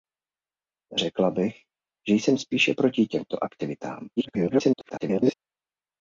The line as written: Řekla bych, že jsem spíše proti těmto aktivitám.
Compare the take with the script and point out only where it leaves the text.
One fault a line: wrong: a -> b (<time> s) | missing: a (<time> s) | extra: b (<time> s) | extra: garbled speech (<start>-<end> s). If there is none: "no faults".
extra: garbled speech (4.2-5.3 s)